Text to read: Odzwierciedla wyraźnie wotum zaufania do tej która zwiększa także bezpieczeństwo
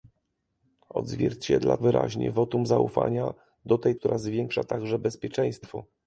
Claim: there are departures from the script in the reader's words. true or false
false